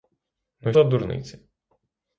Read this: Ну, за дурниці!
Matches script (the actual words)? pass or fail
pass